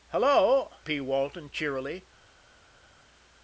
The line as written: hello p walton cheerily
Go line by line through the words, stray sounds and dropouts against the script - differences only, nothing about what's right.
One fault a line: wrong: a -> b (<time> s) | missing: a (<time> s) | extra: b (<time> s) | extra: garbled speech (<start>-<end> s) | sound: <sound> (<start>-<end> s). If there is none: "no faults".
no faults